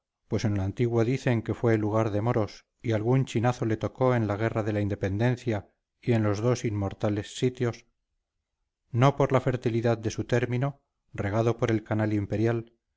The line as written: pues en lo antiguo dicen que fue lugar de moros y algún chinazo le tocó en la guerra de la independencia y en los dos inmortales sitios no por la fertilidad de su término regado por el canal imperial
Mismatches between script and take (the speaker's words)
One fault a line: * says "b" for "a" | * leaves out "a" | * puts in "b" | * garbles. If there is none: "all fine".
all fine